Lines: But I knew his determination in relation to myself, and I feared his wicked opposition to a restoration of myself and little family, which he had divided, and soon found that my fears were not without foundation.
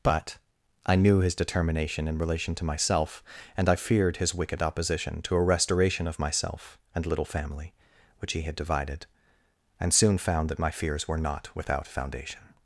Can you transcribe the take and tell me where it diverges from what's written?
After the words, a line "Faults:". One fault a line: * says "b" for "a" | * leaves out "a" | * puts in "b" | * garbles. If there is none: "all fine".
But I knew his determination in relation to myself, and I feared his wicked opposition to a restoration of myself and little family, which he had divided, and soon found that my fears were not without foundation.
Faults:
all fine